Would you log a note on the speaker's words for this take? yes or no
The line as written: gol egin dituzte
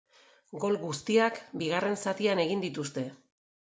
yes